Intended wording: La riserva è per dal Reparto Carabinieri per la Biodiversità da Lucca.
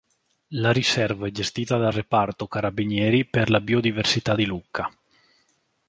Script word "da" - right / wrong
wrong